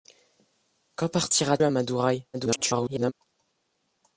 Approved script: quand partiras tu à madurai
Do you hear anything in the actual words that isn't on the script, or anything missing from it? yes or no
yes